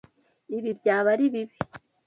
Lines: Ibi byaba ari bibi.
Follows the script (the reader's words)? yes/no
yes